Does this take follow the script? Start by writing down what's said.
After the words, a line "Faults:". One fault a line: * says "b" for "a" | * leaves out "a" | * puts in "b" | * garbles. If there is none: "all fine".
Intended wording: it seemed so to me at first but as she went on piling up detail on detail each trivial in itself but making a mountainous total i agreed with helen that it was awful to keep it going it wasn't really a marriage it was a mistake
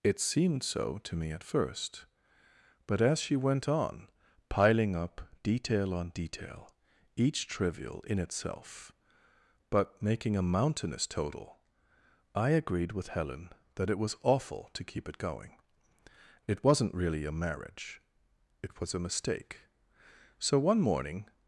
it seemed so to me at first but as she went on piling up detail on detail each trivial in itself but making a mountainous total i agreed with helen that it was awful to keep it going it wasn't really a marriage it was a mistake so one morning
Faults:
* puts in "so one morning"